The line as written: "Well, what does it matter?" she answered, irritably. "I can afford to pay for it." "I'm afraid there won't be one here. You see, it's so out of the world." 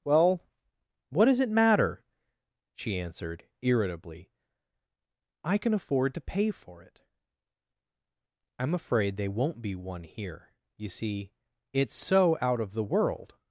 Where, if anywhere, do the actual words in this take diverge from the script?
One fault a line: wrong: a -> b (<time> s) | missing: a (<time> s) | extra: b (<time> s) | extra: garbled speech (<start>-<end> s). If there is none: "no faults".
wrong: there -> they (9.2 s)